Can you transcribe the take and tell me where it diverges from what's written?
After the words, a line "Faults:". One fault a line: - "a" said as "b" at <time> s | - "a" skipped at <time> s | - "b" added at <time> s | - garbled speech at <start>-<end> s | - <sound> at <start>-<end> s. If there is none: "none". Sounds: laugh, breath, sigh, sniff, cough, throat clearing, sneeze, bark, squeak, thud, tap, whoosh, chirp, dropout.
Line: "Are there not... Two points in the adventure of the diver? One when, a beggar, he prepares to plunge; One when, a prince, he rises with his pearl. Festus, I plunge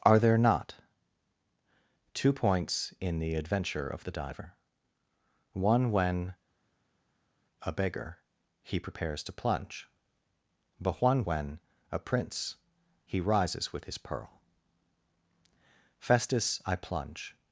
"Are there not... Two points in the adventure of the diver? One when, a beggar, he prepares to plunge; but One when, a prince, he rises with his pearl. Festus, I plunge
Faults:
- "but" added at 10.8 s